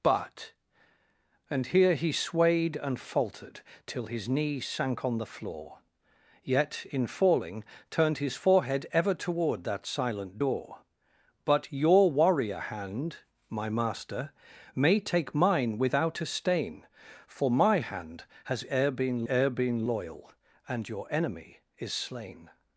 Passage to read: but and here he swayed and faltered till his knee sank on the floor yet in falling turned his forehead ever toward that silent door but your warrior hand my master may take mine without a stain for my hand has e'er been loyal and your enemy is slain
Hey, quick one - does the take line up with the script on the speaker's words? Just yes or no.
no